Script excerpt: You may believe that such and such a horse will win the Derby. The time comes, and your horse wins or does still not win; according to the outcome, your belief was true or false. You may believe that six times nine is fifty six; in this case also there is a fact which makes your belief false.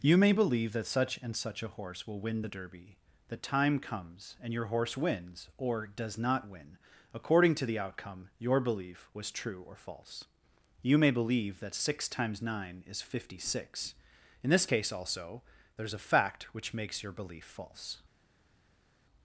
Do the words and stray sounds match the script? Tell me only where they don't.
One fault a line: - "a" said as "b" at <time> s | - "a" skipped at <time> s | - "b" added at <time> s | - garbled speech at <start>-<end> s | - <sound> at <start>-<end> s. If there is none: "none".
- "still" skipped at 6.2 s